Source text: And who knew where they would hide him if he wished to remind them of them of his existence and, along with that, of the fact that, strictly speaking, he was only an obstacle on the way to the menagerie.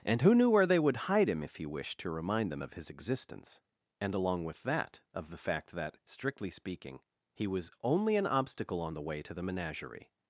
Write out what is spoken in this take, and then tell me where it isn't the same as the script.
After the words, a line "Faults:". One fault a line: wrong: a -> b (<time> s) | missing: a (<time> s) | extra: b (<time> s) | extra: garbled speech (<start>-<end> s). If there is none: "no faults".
And who knew where they would hide him if he wished to remind them of his existence and, along with that, of the fact that, strictly speaking, he was only an obstacle on the way to the menagerie.
Faults:
missing: them of (2.7 s)